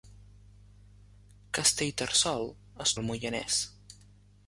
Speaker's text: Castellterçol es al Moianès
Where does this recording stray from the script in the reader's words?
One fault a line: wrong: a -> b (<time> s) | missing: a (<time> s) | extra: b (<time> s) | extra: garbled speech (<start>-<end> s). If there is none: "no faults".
no faults